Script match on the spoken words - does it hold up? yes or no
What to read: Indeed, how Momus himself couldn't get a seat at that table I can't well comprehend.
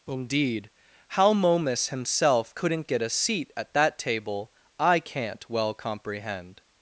yes